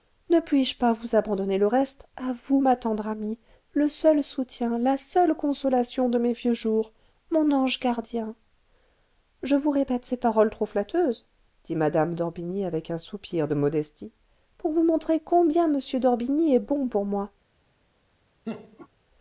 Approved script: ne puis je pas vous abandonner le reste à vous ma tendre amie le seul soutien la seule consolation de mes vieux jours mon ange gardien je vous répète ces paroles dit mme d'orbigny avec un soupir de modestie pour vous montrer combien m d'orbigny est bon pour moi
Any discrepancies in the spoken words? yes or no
yes